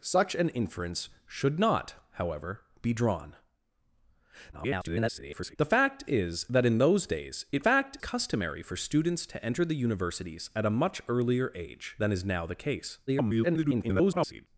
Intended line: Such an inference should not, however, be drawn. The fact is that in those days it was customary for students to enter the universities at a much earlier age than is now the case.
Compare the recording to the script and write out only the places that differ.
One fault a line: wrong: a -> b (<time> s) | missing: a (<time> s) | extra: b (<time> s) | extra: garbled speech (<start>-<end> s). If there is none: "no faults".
extra: garbled speech (4.5-5.6 s)
wrong: was -> fact (7.6 s)
extra: garbled speech (13.1-14.5 s)